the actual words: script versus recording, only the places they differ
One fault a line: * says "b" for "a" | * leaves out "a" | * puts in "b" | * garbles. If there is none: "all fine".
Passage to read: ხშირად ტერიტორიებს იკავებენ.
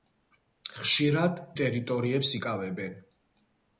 all fine